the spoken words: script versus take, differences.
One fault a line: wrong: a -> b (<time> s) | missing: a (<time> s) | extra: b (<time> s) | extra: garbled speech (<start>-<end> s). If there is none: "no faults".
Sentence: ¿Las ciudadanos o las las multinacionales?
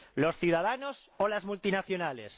wrong: Las -> Los (0.1 s)
missing: las (1.4 s)